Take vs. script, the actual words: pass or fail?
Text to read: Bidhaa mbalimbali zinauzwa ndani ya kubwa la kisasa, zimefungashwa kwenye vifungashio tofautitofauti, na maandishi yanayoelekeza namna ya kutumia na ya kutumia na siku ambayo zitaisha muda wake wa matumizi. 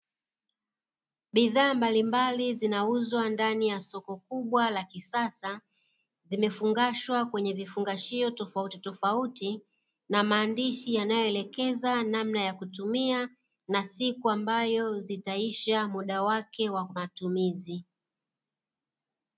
fail